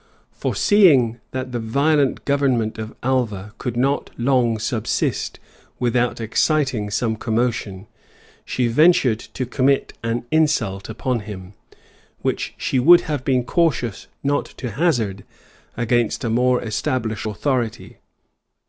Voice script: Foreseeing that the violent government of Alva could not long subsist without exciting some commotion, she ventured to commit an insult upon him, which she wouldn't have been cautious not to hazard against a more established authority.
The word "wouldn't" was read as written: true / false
false